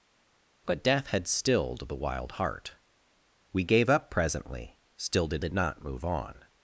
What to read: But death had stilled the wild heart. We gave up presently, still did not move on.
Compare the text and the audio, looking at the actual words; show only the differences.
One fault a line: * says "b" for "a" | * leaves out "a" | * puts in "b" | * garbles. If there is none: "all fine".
* puts in "did"